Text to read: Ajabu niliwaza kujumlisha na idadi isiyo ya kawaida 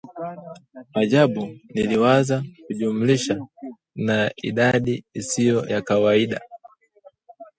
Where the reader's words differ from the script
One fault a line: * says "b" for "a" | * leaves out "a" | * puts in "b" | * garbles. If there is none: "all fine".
all fine